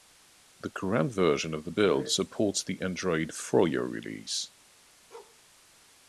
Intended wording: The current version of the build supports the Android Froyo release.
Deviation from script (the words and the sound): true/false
true